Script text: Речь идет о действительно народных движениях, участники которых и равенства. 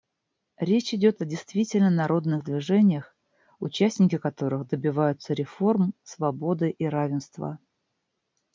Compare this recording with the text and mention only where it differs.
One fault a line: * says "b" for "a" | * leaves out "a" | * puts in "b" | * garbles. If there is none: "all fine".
* puts in "добиваются реформ свободы"